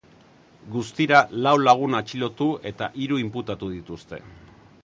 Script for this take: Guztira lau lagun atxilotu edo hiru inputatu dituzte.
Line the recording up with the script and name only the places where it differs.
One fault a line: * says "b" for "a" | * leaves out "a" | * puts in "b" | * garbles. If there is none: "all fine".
* says "eta" for "edo"